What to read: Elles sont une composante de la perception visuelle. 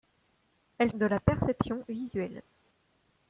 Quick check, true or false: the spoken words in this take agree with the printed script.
false